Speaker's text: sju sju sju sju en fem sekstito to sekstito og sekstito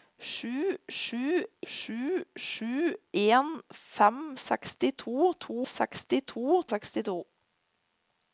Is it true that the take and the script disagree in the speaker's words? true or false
false